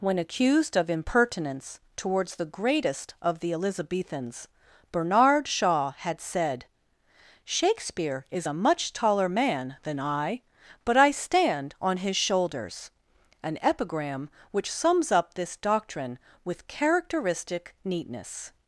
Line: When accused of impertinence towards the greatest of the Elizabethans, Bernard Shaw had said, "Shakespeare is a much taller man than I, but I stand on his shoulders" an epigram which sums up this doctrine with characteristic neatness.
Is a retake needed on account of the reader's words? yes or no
no